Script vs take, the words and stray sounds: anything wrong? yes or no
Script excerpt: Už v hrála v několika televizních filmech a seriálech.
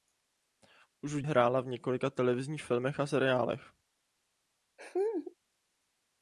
yes